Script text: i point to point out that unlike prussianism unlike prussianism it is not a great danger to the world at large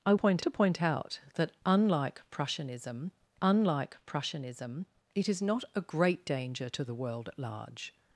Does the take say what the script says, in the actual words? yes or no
yes